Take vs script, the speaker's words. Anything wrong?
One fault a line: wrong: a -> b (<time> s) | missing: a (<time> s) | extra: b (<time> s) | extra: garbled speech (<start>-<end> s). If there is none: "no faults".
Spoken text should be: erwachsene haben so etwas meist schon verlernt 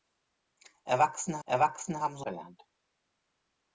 extra: erwachsene (1.4 s)
missing: etwas meist schon (2.3 s)